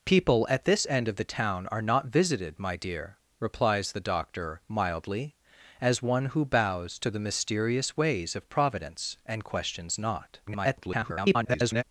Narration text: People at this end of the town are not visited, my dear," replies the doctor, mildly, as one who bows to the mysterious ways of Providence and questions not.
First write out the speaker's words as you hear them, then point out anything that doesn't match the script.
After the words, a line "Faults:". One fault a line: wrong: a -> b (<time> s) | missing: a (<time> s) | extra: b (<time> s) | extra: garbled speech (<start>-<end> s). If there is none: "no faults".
People at this end of the town are not visited, my dear," replies the doctor, mildly, as one who bows to the mysterious ways of Providence and questions not. [garbled]
Faults:
extra: garbled speech (10.5-11.8 s)